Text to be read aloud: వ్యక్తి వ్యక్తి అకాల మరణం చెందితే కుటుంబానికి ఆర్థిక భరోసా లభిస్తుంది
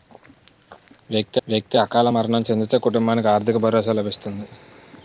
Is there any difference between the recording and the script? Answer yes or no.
no